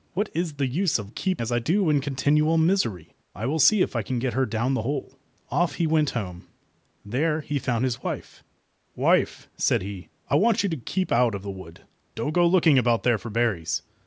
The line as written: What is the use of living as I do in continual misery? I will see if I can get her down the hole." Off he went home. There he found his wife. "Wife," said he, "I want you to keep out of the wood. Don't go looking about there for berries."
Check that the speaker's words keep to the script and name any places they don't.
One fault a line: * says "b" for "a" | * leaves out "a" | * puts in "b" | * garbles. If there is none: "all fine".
* says "keep" for "living"